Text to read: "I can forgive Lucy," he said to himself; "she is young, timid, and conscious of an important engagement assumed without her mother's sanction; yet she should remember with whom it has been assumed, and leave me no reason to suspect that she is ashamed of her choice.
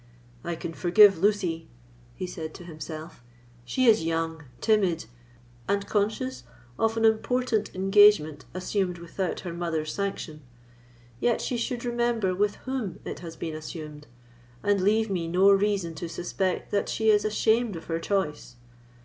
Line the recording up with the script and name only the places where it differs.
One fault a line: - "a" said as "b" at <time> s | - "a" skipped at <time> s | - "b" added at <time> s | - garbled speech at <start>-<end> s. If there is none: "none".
none